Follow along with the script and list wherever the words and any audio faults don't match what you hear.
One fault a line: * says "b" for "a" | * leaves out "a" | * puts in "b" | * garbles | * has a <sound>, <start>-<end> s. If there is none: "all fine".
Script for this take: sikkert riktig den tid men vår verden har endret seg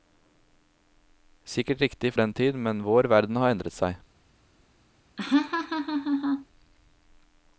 * has a laugh, 5.2-6.5 s